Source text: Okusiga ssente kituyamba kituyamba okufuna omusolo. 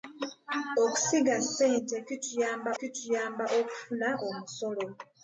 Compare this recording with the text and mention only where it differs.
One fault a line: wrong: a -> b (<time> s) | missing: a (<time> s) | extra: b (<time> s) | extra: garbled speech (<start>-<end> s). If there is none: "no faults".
no faults